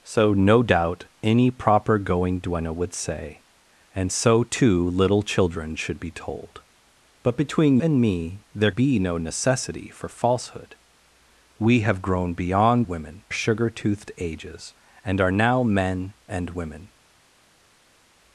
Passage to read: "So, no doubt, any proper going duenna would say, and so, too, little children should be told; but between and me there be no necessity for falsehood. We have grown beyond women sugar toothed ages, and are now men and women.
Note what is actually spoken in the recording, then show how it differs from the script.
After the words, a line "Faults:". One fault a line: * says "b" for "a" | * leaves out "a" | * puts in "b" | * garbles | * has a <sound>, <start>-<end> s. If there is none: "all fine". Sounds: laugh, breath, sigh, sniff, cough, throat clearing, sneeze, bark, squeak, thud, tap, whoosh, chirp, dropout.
"So, no doubt, any proper going duenna would say, and so, too, little children should be told; but between and me there be no necessity for falsehood. We have grown beyond women sugar toothed ages, and are now men and women.
Faults:
all fine